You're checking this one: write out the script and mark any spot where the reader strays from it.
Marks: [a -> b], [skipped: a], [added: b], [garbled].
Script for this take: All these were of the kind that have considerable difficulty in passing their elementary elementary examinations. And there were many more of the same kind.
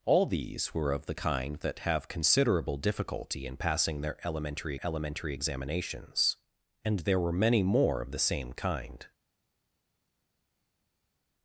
All these were of the kind that have considerable difficulty in passing their elementary elementary examinations. And there were many more of the same kind.